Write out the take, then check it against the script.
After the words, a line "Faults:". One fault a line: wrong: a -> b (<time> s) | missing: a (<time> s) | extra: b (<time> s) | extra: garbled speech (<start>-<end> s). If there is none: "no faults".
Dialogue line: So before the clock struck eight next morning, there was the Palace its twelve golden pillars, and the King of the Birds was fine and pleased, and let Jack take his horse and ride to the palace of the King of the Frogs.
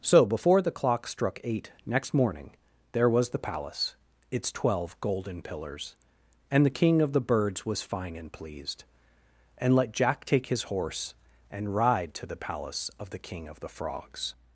So before the clock struck eight next morning, there was the Palace its twelve golden pillars, and the King of the Birds was fine and pleased, and let Jack take his horse and ride to the palace of the King of the Frogs.
Faults:
no faults